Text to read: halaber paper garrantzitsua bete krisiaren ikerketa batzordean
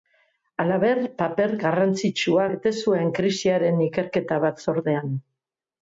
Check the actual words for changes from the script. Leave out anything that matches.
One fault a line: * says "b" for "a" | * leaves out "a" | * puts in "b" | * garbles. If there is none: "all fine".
* puts in "zuen"